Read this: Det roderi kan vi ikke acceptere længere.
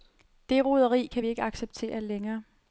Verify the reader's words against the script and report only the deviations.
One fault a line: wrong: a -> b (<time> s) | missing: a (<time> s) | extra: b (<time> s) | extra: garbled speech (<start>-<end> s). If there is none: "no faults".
no faults